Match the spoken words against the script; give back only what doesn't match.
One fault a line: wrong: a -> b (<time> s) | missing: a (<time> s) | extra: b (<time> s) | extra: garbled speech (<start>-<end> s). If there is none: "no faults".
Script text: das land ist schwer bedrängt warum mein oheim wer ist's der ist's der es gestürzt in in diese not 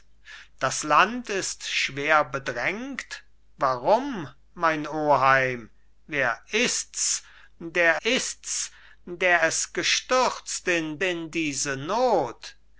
no faults